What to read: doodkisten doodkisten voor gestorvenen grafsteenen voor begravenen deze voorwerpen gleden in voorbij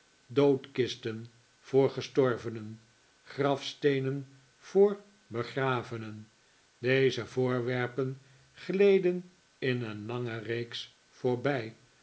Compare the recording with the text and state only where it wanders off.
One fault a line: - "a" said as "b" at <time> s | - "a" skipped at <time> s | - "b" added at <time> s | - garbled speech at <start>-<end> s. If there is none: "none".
- "doodkisten" skipped at 1.2 s
- "een lange reeks" added at 9.8 s